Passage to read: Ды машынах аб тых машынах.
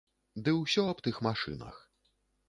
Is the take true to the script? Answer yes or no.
no